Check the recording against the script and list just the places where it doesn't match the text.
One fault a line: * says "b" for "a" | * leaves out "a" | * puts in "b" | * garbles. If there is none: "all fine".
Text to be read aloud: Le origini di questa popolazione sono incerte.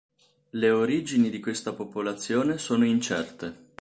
all fine